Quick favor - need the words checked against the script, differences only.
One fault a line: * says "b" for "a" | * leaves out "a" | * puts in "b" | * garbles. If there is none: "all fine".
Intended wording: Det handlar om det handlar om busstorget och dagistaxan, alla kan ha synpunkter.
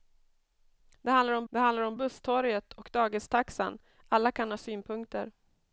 all fine